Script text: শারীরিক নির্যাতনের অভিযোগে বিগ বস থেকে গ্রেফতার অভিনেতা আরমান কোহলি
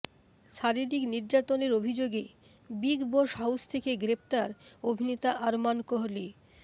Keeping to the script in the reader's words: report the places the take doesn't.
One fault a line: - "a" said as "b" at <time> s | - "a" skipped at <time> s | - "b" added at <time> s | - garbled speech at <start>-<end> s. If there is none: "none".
- "হাউস" added at 3.4 s